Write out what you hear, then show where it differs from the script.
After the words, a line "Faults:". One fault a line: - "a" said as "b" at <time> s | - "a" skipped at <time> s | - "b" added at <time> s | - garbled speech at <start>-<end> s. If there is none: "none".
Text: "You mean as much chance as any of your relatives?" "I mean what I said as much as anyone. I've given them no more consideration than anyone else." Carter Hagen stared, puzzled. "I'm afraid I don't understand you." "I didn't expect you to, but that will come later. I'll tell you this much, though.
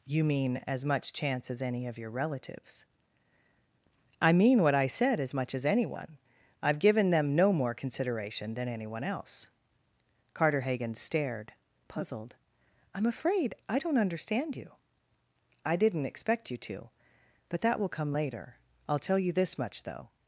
"You mean as much chance as any of your relatives?" "I mean what I said as much as anyone. I've given them no more consideration than anyone else." Carter Hagen stared, puzzled. "I'm afraid I don't understand you." "I didn't expect you to, but that will come later. I'll tell you this much, though.
Faults:
none